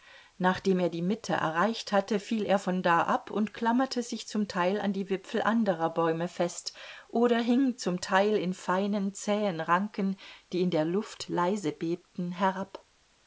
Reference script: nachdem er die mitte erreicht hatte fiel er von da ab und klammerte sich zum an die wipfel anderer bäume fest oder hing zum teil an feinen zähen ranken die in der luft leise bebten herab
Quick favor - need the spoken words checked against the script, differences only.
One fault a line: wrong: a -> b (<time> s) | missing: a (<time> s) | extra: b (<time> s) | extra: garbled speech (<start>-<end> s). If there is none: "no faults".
extra: teil (4.5 s)
wrong: an -> in (8.3 s)